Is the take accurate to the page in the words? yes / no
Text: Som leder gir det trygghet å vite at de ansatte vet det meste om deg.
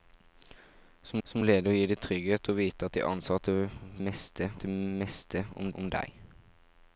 no